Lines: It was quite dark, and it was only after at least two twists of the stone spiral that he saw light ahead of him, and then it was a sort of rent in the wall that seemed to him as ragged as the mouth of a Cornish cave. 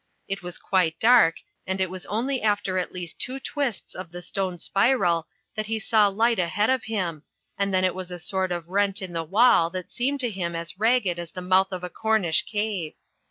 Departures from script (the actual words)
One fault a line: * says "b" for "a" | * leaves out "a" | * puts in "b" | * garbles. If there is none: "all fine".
all fine